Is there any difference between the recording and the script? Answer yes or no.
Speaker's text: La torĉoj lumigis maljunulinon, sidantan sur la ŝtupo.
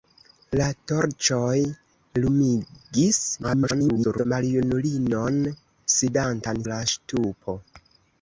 yes